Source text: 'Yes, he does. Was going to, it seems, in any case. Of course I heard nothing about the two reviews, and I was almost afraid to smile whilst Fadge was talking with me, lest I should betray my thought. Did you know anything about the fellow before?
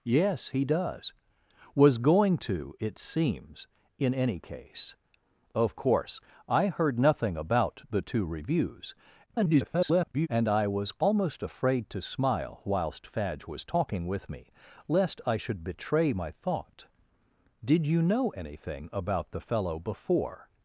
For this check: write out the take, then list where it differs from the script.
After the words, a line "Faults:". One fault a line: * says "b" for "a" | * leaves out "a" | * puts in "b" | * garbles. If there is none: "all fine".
'Yes, he does. Was going to, it seems, in any case. Of course I heard nothing about the two reviews, [garbled] and I was almost afraid to smile whilst Fadge was talking with me, lest I should betray my thought. Did you know anything about the fellow before?
Faults:
* garbles